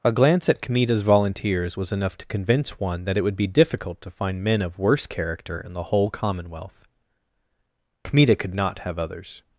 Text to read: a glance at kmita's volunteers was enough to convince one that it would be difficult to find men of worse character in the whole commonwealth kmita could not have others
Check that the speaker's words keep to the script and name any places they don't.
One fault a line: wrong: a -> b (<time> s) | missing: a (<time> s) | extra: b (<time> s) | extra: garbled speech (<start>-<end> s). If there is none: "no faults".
no faults